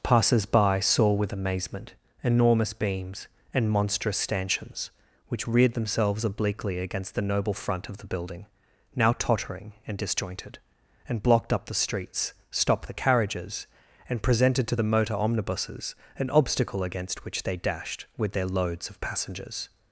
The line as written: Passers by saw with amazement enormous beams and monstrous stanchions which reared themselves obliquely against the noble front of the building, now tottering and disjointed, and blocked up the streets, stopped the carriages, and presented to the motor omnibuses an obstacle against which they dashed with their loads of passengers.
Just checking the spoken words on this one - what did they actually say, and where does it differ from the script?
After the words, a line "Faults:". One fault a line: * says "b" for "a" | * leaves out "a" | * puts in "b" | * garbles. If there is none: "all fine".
Passers by saw with amazement enormous beams and monstrous stanchions which reared themselves obliquely against the noble front of the building, now tottering and disjointed, and blocked up the streets, stopped the carriages, and presented to the motor omnibuses an obstacle against which they dashed with their loads of passengers.
Faults:
all fine